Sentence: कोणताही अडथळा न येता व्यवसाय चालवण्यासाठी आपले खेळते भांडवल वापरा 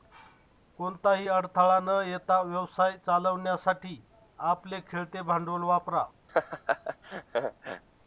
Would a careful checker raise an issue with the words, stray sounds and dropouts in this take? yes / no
yes